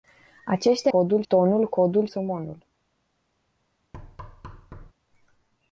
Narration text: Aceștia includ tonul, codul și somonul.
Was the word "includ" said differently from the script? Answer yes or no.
yes